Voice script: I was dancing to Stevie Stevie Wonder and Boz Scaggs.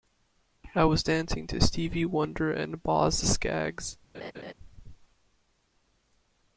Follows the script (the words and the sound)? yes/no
no